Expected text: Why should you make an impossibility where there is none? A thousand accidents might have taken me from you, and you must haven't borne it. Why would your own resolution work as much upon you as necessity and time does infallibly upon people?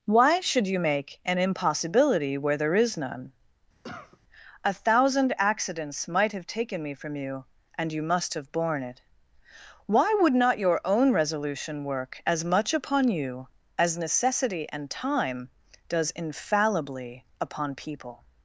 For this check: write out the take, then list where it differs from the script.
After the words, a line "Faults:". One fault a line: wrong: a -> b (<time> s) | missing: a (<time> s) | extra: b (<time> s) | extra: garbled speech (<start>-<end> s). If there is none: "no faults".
Why should you make an impossibility where there is none? A thousand accidents might have taken me from you, and you must have borne it. Why would not your own resolution work as much upon you as necessity and time does infallibly upon people?
Faults:
wrong: haven't -> have (8.4 s)
extra: not (10.3 s)